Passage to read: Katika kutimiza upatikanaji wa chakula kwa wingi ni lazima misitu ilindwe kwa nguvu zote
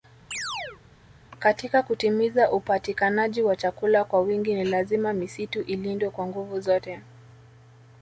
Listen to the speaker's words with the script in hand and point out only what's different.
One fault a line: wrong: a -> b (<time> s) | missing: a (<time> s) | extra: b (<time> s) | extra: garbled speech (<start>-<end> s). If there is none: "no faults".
no faults